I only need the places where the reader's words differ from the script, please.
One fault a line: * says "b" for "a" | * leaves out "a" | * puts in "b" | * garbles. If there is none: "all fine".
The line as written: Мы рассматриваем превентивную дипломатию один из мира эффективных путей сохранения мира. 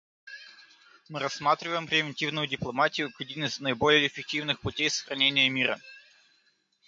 * puts in "как"
* says "наиболее" for "мира"